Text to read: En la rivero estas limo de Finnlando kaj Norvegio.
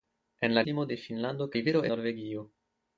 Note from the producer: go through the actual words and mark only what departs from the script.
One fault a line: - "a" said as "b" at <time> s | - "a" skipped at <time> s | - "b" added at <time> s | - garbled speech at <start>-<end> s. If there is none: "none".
- "rivero estas" skipped at 0.6 s
- "kaj" said as "rivero" at 1.6 s